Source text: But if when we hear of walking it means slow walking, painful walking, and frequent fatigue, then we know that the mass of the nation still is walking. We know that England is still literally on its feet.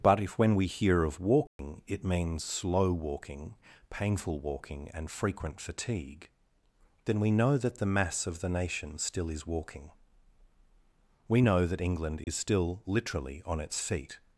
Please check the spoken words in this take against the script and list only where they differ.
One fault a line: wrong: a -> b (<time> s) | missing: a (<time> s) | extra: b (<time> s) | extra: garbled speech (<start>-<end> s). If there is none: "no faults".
no faults